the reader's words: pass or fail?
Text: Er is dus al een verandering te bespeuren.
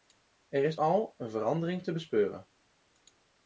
fail